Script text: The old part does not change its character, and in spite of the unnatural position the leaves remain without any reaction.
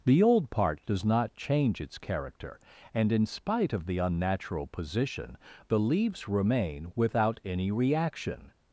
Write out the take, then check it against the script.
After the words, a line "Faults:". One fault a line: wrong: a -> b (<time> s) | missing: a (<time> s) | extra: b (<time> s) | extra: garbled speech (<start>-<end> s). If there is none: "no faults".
The old part does not change its character, and in spite of the unnatural position the leaves remain without any reaction.
Faults:
no faults